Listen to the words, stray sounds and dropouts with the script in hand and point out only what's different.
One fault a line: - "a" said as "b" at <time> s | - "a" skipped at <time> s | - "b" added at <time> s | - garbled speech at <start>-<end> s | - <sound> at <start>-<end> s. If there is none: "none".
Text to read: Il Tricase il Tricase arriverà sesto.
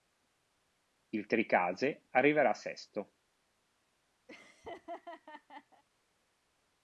- "il Tricase" skipped at 2.1 s
- laugh at 4.3-5.8 s